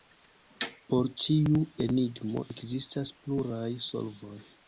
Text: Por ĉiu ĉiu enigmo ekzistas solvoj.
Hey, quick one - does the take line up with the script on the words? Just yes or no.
no